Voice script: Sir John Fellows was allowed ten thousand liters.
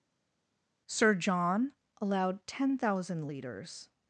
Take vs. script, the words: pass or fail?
fail